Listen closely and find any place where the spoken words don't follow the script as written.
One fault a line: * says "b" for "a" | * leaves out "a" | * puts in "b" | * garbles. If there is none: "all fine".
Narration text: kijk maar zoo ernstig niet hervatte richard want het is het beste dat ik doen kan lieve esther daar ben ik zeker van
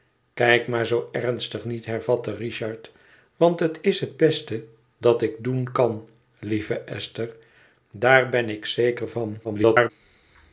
* garbles